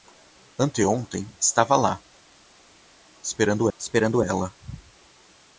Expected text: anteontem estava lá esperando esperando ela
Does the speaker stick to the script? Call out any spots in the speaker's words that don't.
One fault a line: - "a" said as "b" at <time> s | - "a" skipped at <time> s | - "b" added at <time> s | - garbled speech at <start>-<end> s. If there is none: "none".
none